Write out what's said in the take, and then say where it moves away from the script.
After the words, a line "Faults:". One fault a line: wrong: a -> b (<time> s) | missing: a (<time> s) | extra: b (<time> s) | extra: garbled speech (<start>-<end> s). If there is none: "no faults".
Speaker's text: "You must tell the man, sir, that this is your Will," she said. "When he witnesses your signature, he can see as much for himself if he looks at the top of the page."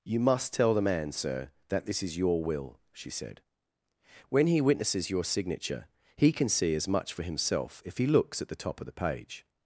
"You must tell the man, sir, that this is your Will," she said. "When he witnesses your signature, he can see as much for himself if he looks at the top of the page."
Faults:
no faults